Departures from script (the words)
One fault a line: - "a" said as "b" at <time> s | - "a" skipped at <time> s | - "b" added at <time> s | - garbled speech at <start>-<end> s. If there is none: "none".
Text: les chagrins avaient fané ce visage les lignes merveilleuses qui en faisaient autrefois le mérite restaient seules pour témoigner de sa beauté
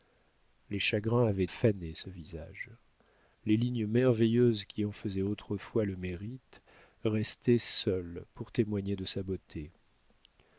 none